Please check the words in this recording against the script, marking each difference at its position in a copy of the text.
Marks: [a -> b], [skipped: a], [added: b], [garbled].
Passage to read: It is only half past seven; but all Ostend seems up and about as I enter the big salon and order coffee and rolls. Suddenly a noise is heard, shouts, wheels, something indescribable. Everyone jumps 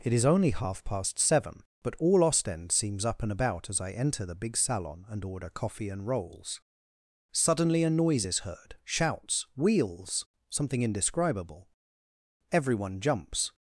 It is only half past seven; but all Ostend seems up and about as I enter the big salon and order coffee and rolls. Suddenly a noise is heard, shouts, wheels, something indescribable. Everyone jumps